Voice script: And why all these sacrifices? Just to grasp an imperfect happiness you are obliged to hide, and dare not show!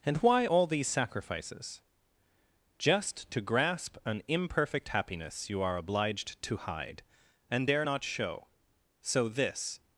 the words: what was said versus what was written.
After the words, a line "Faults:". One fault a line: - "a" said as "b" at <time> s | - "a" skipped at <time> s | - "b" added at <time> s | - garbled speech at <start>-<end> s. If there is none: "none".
And why all these sacrifices? Just to grasp an imperfect happiness you are obliged to hide, and dare not show! So this
Faults:
- "So this" added at 9.0 s